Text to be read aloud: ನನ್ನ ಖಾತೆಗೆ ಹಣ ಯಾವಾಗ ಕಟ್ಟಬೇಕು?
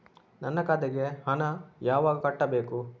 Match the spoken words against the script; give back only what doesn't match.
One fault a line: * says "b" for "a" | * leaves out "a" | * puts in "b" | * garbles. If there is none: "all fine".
all fine